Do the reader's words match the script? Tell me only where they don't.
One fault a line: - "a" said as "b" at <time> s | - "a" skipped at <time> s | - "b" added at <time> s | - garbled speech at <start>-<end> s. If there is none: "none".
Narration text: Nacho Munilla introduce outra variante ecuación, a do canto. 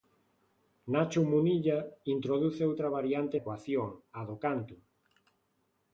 none